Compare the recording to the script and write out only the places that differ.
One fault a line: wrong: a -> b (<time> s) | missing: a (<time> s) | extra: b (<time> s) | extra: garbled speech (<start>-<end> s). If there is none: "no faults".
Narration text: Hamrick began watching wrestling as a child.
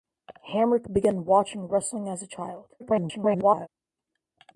extra: garbled speech (2.8-3.7 s)